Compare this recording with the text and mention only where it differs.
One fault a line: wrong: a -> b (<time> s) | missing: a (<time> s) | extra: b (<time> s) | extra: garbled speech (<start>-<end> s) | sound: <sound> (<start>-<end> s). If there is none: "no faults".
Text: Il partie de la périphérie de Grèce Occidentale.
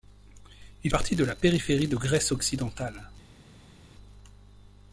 no faults